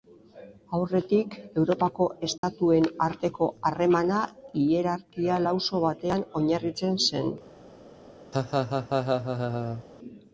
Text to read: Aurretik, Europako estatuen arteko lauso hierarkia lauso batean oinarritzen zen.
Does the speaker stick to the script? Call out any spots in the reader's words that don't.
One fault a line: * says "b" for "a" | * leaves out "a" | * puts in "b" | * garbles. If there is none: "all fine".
* says "harremana" for "lauso"